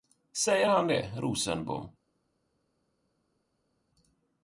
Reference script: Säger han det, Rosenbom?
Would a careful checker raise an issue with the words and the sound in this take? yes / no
no